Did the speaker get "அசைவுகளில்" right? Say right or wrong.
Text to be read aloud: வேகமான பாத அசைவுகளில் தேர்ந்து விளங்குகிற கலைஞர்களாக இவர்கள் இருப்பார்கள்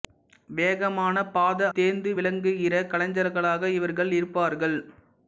wrong